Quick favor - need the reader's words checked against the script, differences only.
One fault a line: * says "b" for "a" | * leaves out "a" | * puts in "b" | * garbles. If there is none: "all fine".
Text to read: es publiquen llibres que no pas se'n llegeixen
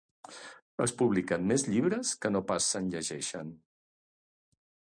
* puts in "més"